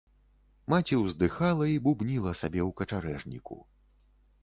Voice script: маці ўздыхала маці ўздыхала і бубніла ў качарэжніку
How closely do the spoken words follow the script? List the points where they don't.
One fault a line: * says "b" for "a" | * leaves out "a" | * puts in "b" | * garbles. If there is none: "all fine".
* leaves out "маці ўздыхала"
* puts in "сабе"